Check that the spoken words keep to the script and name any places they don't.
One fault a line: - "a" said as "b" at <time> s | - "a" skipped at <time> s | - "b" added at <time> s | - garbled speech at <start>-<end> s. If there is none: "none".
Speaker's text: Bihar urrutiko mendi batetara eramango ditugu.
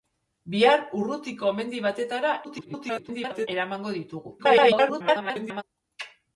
- garbled speech at 2.4-3.5 s
- garbled speech at 4.4-5.6 s